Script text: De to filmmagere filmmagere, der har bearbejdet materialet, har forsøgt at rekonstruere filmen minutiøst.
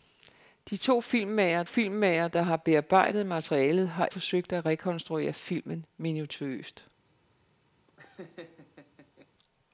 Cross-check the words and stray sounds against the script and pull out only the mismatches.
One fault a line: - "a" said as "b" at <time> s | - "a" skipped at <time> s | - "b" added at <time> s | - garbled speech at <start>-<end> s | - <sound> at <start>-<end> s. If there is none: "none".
- laugh at 7.9-9.3 s